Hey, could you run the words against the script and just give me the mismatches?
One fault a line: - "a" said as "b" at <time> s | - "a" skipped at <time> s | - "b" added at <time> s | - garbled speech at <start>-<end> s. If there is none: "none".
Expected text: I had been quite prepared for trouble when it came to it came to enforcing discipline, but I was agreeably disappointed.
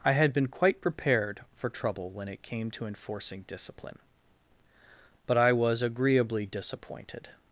- "it came to" skipped at 2.9 s